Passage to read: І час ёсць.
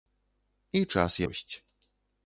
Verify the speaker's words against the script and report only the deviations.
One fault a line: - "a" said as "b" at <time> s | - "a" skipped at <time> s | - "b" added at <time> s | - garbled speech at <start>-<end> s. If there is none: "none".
none